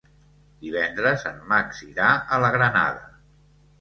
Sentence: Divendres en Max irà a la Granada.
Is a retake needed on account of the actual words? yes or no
no